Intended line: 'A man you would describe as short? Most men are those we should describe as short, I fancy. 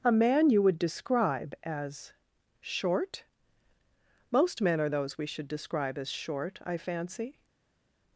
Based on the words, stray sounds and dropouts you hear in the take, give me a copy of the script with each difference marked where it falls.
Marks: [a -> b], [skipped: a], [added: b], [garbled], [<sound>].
'A man you would describe as short? Most men are those we should describe as short, I fancy.